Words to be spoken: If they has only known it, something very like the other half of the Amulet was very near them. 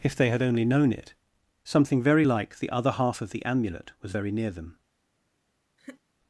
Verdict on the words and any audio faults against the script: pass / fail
fail